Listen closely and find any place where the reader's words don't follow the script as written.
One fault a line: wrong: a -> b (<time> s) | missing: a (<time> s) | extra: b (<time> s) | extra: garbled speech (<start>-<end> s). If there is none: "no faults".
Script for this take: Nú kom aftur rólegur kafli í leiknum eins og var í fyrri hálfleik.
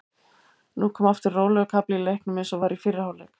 no faults